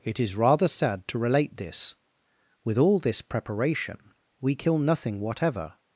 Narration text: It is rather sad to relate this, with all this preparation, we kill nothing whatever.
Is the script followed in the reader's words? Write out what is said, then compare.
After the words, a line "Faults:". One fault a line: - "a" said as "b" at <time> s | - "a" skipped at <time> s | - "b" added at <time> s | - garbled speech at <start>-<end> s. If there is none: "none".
It is rather sad to relate this, with all this preparation, we kill nothing whatever.
Faults:
none